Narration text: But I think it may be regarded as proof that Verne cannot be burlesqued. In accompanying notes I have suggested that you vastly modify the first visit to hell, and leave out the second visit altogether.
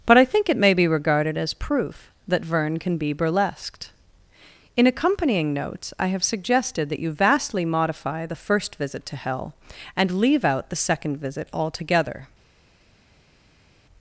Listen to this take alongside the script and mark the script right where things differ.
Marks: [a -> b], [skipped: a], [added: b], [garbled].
But I think it may be regarded as proof that Verne [cannot -> can] be burlesqued. In accompanying notes I have suggested that you vastly modify the first visit to hell, and leave out the second visit altogether.